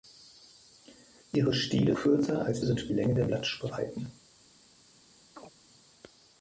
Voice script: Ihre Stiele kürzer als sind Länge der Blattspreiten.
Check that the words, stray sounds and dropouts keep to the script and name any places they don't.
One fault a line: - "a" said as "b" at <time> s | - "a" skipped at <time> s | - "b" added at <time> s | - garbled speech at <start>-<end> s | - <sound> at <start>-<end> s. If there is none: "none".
- chirp at 5.4-5.5 s